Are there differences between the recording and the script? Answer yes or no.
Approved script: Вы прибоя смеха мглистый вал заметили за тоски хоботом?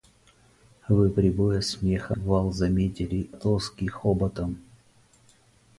yes